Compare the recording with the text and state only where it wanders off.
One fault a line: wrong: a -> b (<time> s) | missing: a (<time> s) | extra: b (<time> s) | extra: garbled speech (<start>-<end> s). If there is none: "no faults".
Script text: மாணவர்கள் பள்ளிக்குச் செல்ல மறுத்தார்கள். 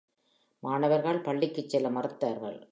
no faults